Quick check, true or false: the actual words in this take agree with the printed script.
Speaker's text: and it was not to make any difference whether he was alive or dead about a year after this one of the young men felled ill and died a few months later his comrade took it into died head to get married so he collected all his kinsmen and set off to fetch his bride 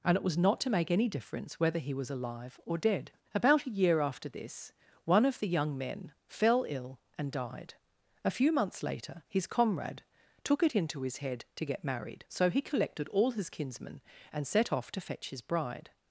false